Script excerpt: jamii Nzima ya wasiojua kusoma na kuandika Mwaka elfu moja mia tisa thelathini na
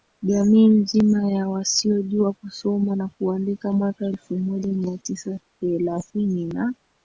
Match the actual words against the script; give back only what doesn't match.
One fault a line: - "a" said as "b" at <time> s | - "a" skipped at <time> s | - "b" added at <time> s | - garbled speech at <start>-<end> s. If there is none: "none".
none